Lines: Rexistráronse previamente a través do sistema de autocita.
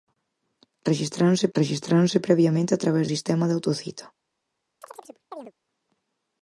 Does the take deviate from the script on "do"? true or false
true